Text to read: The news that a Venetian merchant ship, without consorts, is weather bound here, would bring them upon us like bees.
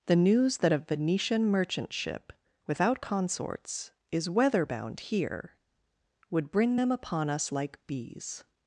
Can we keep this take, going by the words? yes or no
yes